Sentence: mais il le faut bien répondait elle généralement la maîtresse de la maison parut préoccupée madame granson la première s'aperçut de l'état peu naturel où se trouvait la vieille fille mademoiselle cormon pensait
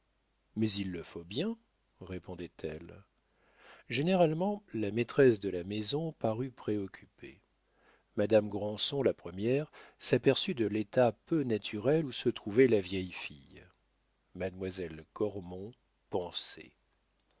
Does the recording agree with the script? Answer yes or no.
yes